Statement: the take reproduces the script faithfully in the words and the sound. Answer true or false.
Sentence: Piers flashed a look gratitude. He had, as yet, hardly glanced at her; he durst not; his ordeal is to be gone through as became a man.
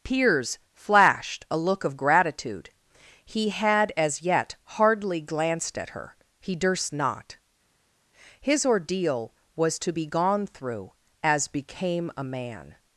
false